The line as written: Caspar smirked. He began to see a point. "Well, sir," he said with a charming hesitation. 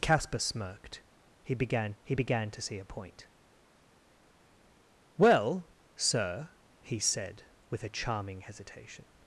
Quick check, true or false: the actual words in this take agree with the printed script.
false